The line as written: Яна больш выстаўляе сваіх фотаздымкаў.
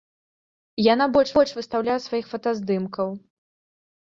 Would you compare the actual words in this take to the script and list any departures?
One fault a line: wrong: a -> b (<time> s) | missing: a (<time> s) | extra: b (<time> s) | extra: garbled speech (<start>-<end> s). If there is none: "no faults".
extra: больш (1.4 s)